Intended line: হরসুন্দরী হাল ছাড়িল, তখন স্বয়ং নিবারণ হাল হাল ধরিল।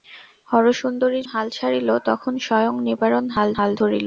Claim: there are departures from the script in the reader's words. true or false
false